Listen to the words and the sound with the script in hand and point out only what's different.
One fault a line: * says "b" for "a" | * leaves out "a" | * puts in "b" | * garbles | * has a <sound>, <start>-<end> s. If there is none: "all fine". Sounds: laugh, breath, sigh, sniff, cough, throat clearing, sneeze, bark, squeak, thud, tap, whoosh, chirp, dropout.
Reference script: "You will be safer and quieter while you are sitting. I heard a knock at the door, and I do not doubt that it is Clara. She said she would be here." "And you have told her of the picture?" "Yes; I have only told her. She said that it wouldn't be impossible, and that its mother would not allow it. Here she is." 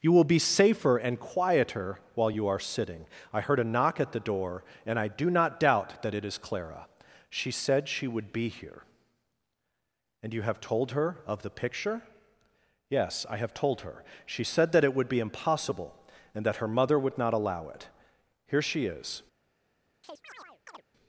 * leaves out "only"
* says "would" for "wouldn't"
* says "her" for "its"
* has a chirp, 20.0-20.8 s